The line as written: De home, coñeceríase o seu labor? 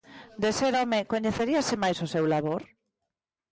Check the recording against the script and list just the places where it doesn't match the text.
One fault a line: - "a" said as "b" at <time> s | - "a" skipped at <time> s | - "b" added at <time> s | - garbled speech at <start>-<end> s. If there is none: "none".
- "ser" added at 0.6 s
- "máis" added at 1.8 s